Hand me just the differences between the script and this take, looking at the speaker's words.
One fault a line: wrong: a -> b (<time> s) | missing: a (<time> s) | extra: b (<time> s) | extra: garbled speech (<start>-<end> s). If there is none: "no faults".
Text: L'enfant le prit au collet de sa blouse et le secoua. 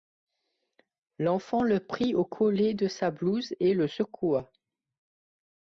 no faults